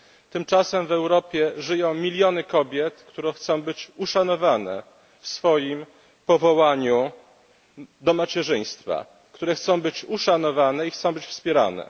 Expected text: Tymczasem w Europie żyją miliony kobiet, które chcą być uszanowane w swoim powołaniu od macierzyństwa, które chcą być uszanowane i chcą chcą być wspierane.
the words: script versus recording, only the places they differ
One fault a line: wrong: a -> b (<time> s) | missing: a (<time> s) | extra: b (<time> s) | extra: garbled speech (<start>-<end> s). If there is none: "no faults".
wrong: od -> do (8.0 s)
missing: chcą (11.1 s)